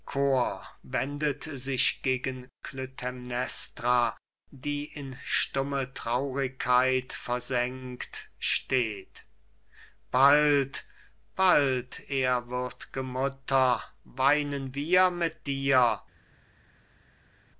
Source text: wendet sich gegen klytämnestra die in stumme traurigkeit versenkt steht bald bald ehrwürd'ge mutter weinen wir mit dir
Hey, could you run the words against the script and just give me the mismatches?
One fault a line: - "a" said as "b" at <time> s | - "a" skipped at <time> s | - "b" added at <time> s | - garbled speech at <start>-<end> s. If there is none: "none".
none